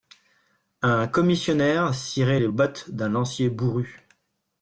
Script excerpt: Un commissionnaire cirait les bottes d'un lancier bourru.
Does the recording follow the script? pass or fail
pass